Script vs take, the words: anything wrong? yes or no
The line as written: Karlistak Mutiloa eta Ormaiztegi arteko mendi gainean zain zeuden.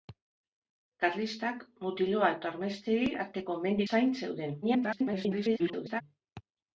yes